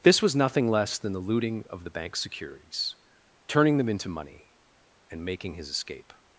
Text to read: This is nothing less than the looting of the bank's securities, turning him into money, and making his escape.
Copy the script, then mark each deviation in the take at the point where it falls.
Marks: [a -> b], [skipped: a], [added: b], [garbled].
This [is -> was] nothing less than the looting of the bank's securities, turning [him -> them] into money, and making his escape.